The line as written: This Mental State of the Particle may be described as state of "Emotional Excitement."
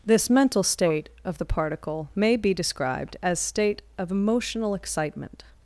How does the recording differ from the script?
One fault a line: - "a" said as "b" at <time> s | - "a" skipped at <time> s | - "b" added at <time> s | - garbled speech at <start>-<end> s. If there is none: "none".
none